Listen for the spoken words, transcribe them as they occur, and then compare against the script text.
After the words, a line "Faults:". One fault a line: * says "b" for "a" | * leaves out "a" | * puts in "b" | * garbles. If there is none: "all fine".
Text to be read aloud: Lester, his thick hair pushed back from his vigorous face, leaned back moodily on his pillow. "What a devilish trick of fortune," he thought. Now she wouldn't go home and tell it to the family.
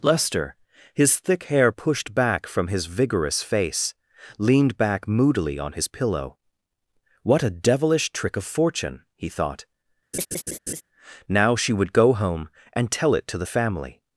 Lester, his thick hair pushed back from his vigorous face, leaned back moodily on his pillow. "What a devilish trick of fortune," he thought. Now she would go home and tell it to the family.
Faults:
* says "would" for "wouldn't"